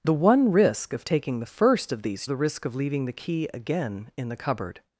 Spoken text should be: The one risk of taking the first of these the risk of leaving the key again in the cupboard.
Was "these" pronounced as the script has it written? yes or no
yes